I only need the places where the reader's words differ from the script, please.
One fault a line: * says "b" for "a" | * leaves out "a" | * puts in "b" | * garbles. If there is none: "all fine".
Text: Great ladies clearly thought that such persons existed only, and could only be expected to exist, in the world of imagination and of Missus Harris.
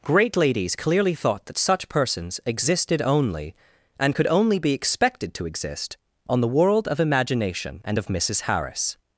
* says "on" for "in"